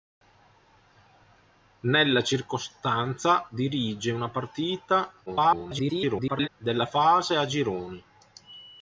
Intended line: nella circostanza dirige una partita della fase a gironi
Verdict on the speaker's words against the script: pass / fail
fail